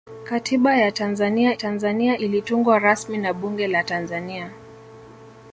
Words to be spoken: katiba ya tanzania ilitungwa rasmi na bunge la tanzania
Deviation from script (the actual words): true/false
true